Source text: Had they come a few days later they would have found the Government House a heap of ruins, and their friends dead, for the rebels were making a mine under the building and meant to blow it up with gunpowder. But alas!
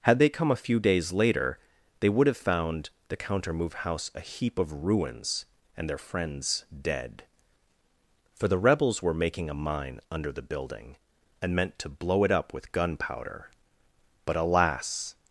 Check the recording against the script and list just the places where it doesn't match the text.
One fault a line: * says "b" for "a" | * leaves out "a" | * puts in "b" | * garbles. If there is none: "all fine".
* says "Countermove" for "Government"